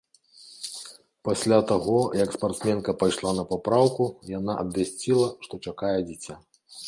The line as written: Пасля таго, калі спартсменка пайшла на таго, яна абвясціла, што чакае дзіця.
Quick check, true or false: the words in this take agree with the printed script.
false